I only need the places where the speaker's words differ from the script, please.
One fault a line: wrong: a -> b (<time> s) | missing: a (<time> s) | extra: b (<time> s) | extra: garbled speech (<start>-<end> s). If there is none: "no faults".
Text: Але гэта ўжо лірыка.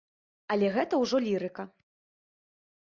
no faults